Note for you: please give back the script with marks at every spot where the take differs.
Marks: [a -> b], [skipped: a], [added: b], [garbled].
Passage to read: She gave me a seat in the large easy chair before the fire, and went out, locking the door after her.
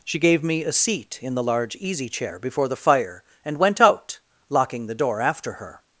She gave me a seat in the large easy chair before the fire, and went out, locking the door after her.